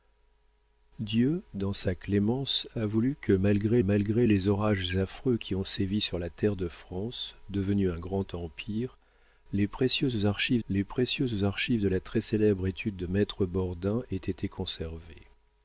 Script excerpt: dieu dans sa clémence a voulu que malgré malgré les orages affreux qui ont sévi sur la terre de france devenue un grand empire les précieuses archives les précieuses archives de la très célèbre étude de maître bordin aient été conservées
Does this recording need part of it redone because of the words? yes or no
no